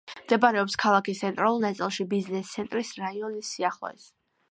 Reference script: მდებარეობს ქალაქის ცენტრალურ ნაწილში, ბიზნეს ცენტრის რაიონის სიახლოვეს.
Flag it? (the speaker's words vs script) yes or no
no